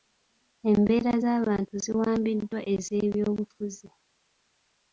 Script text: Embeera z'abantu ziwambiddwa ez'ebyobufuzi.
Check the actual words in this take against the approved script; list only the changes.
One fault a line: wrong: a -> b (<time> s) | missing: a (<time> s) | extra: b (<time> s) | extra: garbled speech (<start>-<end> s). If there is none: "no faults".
no faults